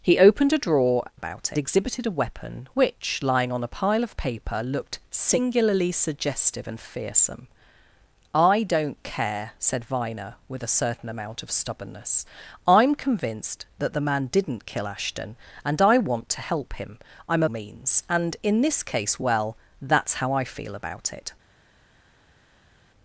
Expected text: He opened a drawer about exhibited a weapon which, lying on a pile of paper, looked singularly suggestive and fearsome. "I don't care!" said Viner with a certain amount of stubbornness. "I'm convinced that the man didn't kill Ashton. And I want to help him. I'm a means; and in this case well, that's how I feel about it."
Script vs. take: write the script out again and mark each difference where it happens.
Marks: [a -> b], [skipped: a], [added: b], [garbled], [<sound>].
He opened a drawer about exhibited a weapon which, lying on a pile of paper, looked singularly suggestive and fearsome. "I don't care!" said Viner with a certain amount of stubbornness. "I'm convinced that the man didn't kill Ashton. And I want to help him. I'm a means; and in this case well, that's how I feel about it."